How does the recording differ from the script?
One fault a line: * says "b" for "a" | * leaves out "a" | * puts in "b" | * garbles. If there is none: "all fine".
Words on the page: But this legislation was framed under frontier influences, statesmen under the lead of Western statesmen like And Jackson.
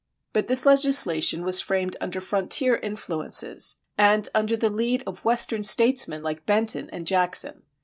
* says "and" for "statesmen"
* puts in "Benton"